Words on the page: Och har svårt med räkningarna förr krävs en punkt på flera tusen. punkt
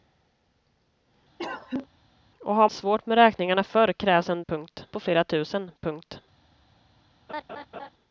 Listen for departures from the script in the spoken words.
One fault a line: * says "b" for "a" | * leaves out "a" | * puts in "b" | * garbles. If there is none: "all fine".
all fine